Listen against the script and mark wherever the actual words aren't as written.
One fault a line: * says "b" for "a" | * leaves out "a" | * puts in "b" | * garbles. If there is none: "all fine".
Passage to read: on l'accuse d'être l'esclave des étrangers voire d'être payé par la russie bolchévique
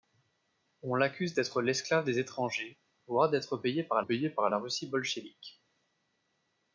* puts in "payé par"